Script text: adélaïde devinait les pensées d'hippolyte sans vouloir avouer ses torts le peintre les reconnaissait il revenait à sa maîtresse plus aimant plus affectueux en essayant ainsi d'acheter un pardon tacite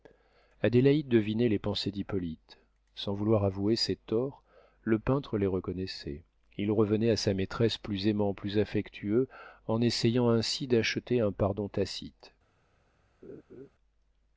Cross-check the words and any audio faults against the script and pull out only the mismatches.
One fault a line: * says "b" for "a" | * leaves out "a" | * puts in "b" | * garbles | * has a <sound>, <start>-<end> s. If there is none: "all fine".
* has a laugh, 13.2-13.7 s